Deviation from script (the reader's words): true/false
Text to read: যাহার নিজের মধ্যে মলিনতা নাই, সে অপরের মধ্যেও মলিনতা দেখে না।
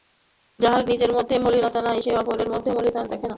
false